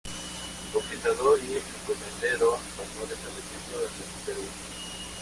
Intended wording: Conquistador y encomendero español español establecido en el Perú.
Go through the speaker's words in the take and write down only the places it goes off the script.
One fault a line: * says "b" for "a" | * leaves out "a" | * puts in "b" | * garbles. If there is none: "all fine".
* leaves out "español"